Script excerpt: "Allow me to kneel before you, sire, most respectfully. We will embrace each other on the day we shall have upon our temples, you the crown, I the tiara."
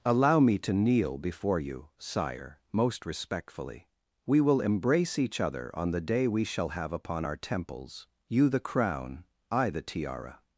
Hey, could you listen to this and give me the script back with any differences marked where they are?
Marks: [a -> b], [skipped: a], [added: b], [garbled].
"Allow me to kneel before you, sire, most respectfully. We will embrace each other on the day we shall have upon our temples, you the crown, I the tiara."